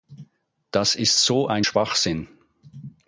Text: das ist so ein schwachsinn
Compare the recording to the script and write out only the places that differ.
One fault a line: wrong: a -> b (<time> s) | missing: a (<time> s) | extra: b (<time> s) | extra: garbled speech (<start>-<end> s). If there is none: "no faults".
no faults